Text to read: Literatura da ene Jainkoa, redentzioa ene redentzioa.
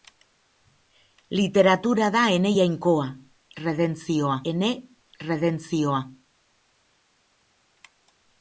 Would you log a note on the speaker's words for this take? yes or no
no